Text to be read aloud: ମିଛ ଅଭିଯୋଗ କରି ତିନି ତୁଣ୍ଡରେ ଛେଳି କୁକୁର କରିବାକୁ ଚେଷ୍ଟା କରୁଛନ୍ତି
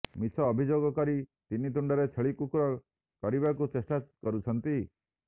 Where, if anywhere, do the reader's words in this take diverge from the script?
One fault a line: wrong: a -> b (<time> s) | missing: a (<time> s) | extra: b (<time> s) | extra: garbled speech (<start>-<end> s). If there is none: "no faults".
no faults